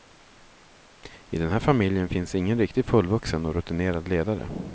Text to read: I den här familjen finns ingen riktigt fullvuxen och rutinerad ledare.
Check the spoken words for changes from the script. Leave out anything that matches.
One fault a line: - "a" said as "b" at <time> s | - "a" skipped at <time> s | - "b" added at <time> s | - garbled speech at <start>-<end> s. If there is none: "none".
none